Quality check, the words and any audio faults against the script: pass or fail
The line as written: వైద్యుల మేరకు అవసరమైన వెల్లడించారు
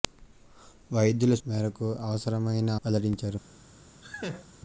fail